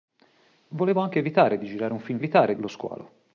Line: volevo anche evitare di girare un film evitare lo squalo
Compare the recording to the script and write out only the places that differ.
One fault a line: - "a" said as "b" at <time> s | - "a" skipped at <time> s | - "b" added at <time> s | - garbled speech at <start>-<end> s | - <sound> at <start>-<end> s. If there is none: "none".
none